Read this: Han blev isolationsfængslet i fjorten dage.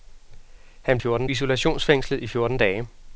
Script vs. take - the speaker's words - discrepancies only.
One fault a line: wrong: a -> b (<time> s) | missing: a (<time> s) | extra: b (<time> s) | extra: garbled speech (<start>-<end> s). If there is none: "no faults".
wrong: blev -> fjorten (1.0 s)